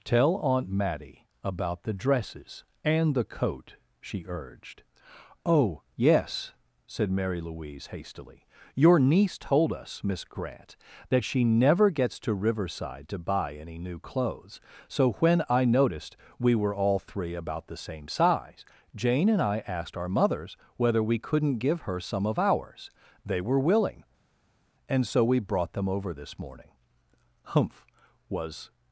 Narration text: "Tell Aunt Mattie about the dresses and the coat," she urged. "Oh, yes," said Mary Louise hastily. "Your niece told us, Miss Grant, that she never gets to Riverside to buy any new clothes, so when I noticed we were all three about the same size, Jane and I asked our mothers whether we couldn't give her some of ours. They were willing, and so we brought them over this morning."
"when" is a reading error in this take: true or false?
false